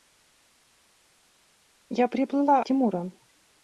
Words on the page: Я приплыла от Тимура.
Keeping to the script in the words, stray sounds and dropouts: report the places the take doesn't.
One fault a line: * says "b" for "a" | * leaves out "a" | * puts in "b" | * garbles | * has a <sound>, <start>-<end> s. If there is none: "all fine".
* leaves out "от"